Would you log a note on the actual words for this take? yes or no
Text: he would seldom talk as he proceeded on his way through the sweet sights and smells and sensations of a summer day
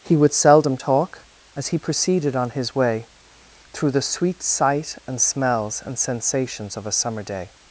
yes